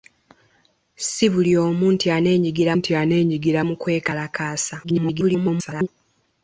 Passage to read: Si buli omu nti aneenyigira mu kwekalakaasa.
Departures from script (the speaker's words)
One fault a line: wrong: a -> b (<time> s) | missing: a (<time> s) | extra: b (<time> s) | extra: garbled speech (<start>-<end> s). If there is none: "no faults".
extra: nti aneenyigira (2.8 s)
extra: garbled speech (4.8-5.9 s)